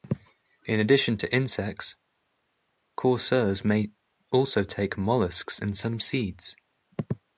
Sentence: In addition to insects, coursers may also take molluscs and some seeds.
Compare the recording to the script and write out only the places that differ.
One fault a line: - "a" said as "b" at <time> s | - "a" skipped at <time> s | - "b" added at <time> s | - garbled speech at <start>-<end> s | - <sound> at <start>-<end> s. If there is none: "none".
none